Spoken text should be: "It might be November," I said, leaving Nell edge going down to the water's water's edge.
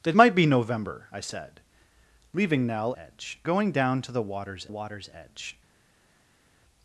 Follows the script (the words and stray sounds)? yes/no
yes